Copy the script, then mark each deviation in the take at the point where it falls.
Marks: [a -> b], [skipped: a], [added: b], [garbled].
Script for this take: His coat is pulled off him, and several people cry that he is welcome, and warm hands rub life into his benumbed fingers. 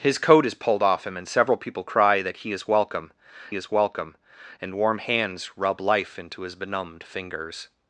His coat is pulled off him, and several people cry that he is welcome, [added: is welcome] and warm hands rub life into his benumbed fingers.